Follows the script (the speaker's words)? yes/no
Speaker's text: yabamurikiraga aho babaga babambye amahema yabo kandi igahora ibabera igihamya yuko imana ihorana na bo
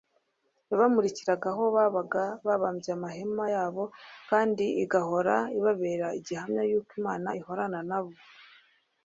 yes